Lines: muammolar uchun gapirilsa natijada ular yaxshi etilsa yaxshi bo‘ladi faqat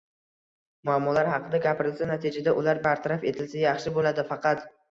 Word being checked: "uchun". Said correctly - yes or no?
no